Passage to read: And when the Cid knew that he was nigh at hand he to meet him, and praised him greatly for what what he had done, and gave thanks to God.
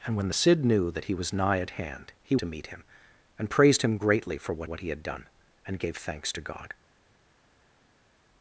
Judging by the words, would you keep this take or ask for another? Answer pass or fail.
pass